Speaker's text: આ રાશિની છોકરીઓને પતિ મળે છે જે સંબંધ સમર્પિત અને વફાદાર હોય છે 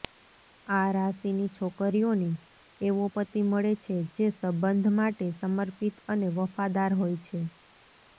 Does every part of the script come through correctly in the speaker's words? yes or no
no